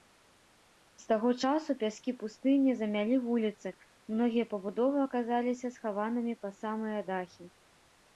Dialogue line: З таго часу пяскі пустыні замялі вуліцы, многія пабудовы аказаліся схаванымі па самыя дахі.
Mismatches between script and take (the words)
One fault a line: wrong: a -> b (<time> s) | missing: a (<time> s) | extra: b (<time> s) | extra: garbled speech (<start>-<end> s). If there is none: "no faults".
no faults